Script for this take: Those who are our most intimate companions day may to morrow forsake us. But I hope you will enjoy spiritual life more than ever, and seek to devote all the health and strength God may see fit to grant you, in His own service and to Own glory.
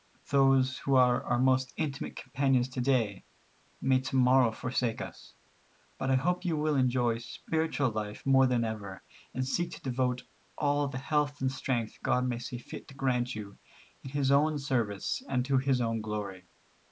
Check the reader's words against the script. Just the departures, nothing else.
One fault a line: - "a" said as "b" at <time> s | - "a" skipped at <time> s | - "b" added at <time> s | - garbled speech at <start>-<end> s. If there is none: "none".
- "to" added at 2.7 s
- "His" added at 15.6 s